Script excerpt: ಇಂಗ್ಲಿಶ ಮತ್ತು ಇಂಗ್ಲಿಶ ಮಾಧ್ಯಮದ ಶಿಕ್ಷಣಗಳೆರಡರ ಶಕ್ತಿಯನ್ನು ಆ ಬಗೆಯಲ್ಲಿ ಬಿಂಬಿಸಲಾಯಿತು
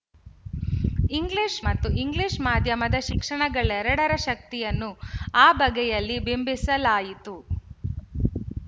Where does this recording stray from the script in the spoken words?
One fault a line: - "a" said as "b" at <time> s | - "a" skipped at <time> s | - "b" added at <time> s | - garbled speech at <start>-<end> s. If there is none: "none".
none